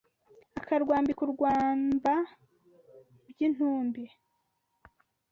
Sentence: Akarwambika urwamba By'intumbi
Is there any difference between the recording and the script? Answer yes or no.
no